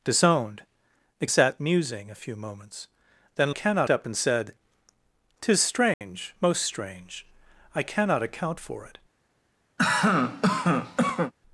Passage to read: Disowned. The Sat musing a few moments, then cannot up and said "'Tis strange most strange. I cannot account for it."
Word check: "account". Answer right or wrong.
right